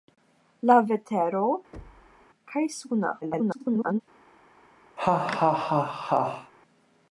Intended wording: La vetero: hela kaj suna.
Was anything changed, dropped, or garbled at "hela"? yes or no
yes